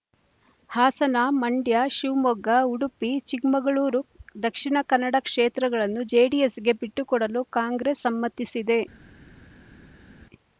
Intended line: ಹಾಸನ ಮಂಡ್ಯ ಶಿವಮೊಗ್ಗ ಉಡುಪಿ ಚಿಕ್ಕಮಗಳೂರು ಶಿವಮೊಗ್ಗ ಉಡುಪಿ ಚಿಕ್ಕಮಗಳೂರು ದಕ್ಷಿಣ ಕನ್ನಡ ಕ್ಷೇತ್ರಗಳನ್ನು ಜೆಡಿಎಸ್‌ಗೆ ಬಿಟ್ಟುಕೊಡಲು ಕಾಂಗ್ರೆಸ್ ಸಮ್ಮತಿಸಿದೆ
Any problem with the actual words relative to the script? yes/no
yes